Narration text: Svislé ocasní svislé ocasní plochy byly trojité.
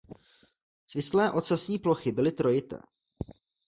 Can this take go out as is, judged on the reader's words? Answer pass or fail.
fail